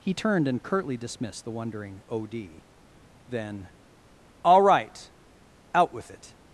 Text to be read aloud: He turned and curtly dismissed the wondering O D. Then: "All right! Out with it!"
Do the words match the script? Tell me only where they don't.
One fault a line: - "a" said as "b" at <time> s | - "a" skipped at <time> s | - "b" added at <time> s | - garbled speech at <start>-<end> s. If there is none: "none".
none